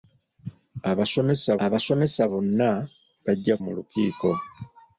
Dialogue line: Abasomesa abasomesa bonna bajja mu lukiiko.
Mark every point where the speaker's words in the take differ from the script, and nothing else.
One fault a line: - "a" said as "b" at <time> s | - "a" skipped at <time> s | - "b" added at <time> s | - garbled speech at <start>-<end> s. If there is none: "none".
none